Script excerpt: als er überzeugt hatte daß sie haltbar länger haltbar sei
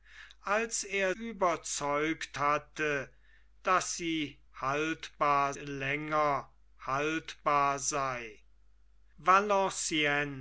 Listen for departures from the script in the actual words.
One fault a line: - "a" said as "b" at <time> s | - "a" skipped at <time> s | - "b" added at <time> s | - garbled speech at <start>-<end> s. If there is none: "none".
none